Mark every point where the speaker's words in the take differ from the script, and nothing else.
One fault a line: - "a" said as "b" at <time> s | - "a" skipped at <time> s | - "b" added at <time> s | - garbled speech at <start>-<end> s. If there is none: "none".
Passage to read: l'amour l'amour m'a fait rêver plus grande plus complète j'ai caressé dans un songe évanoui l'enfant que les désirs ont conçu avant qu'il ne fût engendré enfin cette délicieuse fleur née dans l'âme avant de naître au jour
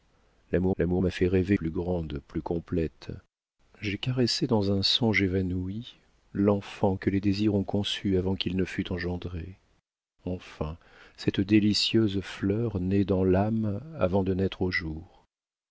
none